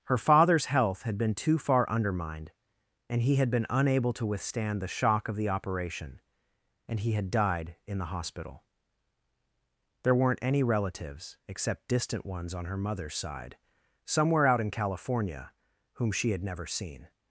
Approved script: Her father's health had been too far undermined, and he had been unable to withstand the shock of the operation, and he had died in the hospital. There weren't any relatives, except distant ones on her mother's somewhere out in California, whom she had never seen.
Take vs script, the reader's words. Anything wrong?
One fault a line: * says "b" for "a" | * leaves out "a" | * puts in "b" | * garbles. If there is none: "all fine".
* puts in "side"